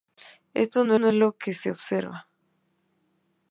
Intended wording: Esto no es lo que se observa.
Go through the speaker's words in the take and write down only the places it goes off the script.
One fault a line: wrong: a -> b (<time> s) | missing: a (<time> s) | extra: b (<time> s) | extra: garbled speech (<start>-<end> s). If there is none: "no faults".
extra: no (0.9 s)